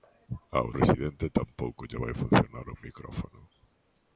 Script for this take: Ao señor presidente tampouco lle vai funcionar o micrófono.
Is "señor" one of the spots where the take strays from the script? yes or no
yes